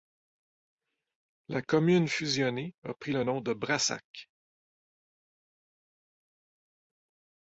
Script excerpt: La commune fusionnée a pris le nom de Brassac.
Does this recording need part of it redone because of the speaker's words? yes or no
no